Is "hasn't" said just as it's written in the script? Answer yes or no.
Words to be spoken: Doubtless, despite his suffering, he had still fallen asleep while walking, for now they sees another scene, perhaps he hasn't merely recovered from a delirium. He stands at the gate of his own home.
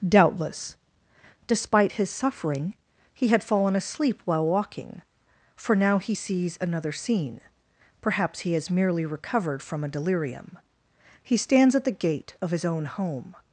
no